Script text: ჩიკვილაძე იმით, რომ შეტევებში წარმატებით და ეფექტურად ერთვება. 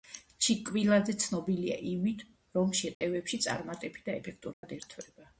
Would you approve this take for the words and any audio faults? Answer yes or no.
no